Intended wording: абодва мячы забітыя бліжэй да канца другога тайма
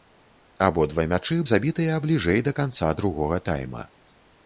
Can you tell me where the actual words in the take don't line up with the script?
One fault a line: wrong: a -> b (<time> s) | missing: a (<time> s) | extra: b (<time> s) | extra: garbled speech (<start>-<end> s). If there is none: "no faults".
no faults